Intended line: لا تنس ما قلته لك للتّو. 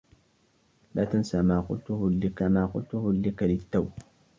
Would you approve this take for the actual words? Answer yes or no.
no